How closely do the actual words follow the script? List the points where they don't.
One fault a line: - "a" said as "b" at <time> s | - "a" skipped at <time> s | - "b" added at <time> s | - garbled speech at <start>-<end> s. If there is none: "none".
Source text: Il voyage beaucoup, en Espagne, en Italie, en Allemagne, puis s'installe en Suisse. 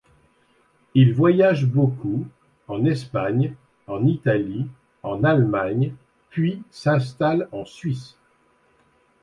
none